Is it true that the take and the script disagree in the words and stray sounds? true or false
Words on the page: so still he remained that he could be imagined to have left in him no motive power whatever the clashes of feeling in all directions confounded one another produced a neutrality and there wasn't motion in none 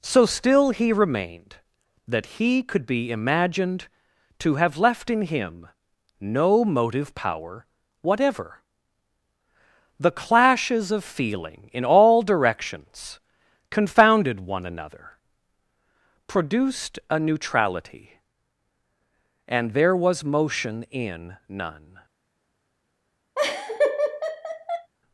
true